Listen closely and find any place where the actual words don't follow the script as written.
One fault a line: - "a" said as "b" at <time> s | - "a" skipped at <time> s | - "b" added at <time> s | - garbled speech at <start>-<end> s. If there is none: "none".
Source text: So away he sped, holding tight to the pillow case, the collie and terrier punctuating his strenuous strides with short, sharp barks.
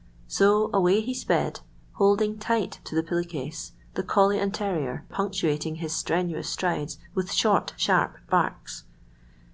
none